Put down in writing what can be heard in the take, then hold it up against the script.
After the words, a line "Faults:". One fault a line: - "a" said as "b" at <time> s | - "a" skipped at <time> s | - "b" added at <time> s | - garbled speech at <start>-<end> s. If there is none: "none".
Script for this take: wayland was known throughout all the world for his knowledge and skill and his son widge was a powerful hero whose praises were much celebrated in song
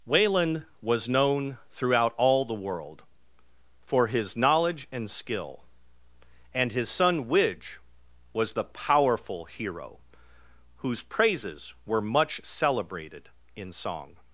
wayland was known throughout all the world for his knowledge and skill and his son widge was the powerful hero whose praises were much celebrated in song
Faults:
- "a" said as "the" at 8.5 s